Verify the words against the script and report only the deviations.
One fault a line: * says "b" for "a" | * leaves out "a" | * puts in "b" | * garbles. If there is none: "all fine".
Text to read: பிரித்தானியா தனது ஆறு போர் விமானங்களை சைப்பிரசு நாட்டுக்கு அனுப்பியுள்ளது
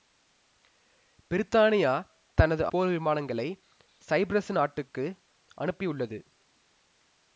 * leaves out "ஆறு"